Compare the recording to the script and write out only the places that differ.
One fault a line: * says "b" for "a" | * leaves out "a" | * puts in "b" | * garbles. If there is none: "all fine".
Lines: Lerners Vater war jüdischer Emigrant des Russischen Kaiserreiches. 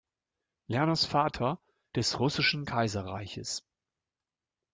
* leaves out "war jüdischer Emigrant"